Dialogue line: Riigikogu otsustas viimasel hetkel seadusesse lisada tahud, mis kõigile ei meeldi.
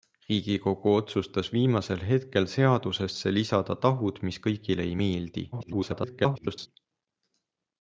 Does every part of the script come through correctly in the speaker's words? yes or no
no